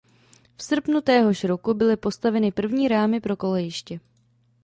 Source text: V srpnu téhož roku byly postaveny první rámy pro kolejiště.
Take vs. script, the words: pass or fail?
pass